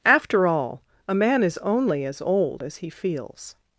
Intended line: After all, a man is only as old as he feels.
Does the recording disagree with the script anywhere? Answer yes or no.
no